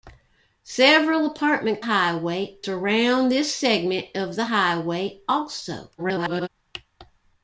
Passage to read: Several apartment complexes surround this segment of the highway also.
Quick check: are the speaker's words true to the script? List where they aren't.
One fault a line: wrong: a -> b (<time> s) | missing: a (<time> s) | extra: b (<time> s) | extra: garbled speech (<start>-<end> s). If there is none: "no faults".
wrong: complexes -> highway (1.8 s)
extra: garbled speech (6.0-6.5 s)